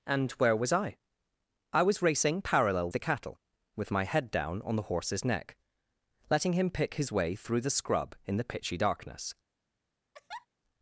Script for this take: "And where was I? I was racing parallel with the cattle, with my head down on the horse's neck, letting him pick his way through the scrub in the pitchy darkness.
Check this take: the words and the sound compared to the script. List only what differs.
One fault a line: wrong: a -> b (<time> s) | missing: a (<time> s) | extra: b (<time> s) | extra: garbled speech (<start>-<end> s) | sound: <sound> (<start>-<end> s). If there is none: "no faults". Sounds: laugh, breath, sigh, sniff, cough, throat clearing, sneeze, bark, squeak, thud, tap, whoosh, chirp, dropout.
missing: with (2.9 s)
sound: laugh (10.1-10.5 s)